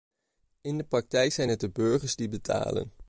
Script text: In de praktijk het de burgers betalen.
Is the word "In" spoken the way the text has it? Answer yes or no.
yes